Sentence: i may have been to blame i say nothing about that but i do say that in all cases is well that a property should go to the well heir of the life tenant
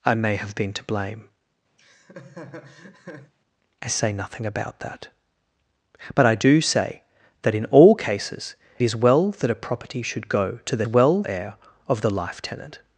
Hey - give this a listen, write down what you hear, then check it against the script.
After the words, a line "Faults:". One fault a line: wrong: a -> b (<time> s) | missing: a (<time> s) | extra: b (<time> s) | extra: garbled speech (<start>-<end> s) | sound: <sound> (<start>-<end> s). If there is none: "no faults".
i may have been to blame i say nothing about that but i do say that in all cases is well that a property should go to the well heir of the life tenant
Faults:
sound: laugh (1.8-3.3 s)